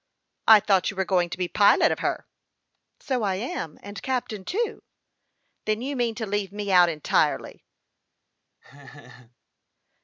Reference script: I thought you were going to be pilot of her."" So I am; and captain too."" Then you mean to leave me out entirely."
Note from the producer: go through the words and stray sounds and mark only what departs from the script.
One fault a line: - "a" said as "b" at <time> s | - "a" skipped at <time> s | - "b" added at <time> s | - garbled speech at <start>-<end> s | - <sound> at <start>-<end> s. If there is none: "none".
- laugh at 8.6-9.4 s